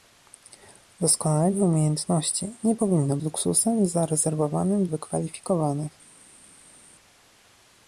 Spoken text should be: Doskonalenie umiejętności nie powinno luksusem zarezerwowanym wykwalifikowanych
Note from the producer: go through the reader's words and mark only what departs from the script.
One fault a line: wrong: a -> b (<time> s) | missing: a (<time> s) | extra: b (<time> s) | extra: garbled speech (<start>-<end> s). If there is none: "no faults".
no faults